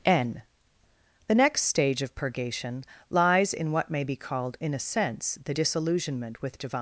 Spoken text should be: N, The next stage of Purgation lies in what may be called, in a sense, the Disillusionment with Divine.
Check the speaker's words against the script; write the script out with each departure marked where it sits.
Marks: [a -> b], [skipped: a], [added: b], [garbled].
N, The next stage of Purgation lies in what may be called, in a sense, the Disillusionment with Divine.